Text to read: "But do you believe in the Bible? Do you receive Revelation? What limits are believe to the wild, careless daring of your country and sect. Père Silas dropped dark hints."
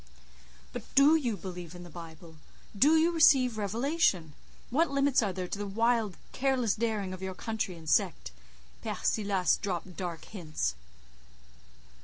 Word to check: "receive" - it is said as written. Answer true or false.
true